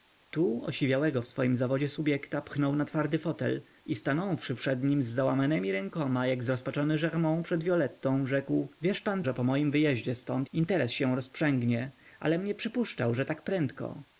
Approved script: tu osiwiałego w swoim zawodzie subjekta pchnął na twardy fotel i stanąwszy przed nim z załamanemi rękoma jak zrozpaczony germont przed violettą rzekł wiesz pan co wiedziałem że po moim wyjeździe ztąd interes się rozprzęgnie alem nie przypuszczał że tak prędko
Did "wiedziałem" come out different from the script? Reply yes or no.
yes